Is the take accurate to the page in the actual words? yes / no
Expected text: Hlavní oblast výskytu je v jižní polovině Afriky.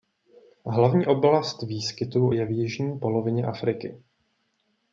yes